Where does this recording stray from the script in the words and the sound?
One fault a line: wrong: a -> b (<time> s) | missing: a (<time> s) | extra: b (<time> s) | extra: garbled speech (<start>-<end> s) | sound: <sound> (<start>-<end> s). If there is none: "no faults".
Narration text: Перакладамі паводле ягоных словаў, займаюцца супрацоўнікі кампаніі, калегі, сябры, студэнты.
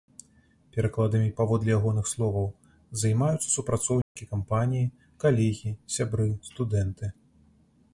sound: dropout (4.0-4.2 s)